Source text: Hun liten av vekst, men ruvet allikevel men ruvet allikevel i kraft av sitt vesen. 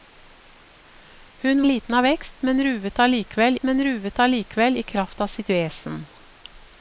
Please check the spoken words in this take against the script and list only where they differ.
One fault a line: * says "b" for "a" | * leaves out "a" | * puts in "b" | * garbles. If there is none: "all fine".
all fine